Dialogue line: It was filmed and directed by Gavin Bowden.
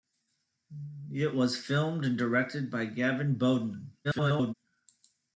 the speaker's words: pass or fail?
fail